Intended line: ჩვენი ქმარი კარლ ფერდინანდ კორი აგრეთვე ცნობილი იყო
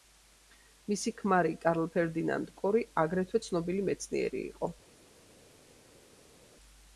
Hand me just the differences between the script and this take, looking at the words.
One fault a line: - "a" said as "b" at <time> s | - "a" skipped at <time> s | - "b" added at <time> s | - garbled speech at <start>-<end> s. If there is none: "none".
- "ჩვენი" said as "მისი" at 0.9 s
- "მეცნიერი" added at 3.9 s